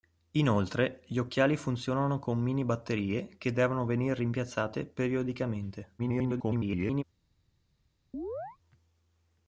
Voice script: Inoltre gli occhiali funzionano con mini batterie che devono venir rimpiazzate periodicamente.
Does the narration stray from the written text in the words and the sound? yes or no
yes